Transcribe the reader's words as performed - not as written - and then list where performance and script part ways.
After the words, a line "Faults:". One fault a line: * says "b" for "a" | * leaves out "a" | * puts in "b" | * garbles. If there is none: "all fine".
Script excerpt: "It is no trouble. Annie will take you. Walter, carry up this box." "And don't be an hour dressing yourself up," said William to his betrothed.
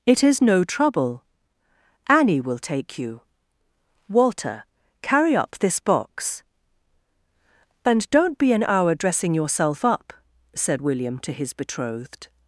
"It is no trouble. Annie will take you. Walter, carry up this box." "And don't be an hour dressing yourself up," said William to his betrothed.
Faults:
all fine